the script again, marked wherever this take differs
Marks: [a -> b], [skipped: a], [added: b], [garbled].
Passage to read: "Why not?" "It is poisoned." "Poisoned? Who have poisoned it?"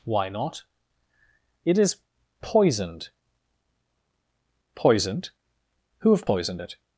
"Why not?" "It is poisoned." "Poisoned? Who have poisoned it?"